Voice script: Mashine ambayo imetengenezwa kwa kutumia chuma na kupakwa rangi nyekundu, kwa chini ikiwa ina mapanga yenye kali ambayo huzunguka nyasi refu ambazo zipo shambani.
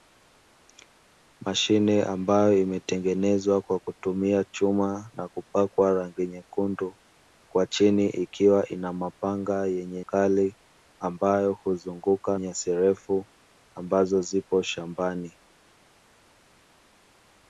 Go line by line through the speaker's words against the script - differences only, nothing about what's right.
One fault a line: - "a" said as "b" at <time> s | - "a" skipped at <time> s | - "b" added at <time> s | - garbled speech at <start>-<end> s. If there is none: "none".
none